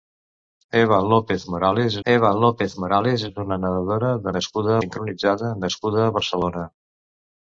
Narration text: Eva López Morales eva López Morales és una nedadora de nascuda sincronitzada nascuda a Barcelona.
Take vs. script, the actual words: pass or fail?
pass